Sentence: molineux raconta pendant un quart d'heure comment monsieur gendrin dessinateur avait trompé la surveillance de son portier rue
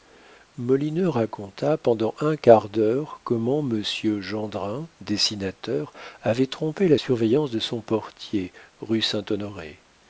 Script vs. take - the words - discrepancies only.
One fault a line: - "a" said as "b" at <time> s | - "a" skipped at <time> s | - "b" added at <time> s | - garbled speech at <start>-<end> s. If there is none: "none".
none